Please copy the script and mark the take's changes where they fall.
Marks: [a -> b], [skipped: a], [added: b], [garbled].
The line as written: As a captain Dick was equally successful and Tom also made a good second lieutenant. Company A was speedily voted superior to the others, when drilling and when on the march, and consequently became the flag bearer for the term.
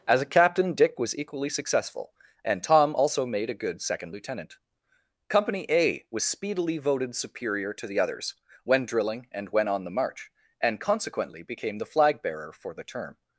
As a captain Dick was equally successful and Tom also made a good second lieutenant. Company A was speedily voted superior to the others, when drilling and when on the march, and consequently became the flag bearer for the term.